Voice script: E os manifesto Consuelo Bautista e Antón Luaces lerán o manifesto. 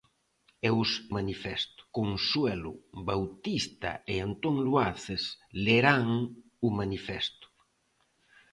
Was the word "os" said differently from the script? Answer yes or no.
no